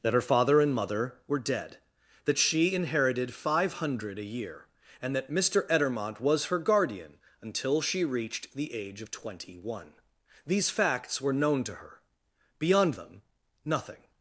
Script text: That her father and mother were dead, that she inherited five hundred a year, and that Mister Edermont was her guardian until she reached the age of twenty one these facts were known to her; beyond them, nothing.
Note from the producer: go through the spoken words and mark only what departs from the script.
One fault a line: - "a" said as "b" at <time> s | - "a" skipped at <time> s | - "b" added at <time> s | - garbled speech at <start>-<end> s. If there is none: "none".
none